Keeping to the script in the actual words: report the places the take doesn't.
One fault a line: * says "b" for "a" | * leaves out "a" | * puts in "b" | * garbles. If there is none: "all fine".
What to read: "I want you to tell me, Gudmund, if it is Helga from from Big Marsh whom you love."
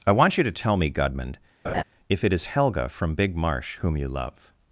* leaves out "from"